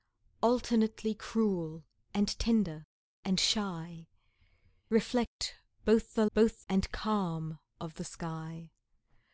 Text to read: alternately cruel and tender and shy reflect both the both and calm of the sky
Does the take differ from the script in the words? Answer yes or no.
no